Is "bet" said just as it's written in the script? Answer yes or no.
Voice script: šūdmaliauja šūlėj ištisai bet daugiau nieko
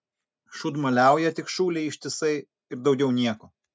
no